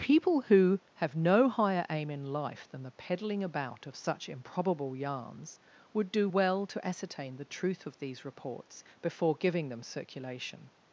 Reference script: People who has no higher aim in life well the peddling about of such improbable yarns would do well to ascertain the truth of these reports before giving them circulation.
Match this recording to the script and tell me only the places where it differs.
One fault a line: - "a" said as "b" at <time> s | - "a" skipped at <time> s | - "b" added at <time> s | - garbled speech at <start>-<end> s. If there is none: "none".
- "has" said as "have" at 0.9 s
- "well" said as "than" at 2.7 s